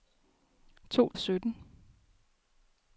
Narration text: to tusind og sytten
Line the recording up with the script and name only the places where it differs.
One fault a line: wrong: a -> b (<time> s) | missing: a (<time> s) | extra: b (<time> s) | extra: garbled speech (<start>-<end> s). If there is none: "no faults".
missing: tusind (1.1 s)